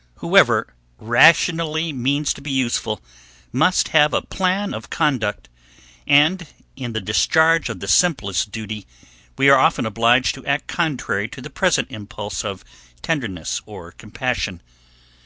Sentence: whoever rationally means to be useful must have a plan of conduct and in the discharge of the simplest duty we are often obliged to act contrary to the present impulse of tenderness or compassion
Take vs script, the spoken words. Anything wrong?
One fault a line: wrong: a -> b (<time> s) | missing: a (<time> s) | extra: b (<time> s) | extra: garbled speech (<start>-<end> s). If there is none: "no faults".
no faults